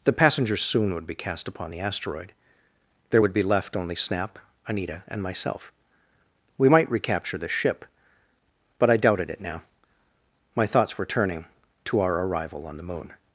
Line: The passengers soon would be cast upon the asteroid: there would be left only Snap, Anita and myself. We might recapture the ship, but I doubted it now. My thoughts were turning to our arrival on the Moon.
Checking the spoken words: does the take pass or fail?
pass